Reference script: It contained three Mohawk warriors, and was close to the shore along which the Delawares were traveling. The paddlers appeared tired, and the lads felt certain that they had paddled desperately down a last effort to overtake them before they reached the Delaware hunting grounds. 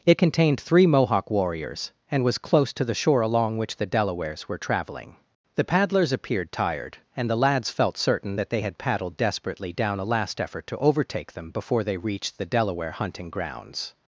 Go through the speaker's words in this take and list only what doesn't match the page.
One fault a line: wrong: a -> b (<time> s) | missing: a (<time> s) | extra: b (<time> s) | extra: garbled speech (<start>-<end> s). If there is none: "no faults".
no faults